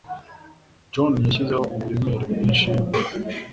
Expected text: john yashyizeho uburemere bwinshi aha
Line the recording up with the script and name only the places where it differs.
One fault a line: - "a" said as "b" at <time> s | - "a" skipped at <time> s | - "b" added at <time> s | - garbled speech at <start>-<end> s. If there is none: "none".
none